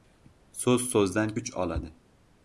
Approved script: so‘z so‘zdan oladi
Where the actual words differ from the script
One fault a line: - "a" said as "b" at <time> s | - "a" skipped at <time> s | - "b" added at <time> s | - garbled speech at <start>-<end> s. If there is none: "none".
- "kuch" added at 1.3 s